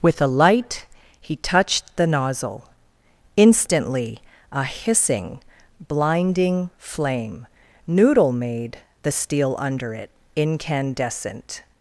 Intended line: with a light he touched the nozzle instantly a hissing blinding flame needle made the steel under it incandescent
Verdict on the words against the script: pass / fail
fail